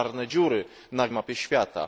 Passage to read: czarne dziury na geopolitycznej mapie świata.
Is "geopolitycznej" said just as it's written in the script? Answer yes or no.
no